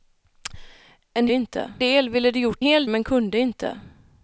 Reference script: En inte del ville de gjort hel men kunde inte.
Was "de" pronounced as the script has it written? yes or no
yes